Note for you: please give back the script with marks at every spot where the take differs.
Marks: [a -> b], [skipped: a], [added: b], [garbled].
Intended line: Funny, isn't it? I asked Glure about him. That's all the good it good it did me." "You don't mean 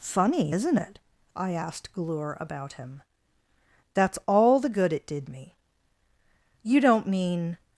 Funny, isn't it? I asked Glure about him. That's all the good it [skipped: good it] did me." "You don't mean